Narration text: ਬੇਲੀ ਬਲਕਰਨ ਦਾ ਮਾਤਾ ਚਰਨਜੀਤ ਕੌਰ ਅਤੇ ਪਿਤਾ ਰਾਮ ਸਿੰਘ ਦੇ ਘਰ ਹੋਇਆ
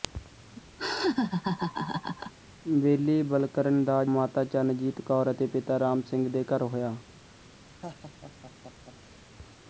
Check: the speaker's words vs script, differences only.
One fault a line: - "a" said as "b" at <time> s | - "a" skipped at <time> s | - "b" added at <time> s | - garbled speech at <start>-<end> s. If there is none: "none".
none